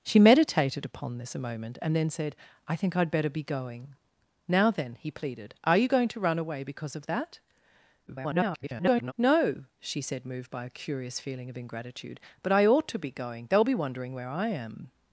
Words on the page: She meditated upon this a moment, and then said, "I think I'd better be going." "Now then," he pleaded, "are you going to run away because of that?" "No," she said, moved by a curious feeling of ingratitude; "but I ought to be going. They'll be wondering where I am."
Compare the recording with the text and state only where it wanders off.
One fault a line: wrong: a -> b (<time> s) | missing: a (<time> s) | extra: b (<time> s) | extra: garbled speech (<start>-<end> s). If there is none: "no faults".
extra: garbled speech (8.1-9.1 s)